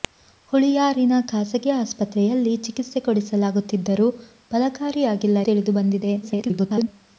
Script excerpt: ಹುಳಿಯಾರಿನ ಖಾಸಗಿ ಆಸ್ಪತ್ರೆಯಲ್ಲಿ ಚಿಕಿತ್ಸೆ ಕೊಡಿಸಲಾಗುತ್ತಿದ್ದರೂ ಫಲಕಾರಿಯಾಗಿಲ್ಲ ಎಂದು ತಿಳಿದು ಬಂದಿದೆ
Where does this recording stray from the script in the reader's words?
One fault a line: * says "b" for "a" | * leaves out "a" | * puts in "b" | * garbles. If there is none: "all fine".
* leaves out "ಎಂದು"
* garbles